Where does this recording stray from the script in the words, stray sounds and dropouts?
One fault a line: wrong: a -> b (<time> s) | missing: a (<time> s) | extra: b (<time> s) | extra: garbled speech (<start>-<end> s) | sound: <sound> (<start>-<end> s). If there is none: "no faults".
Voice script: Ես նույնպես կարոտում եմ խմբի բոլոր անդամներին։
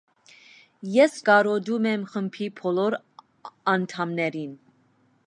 missing: նույնպես (1.2 s)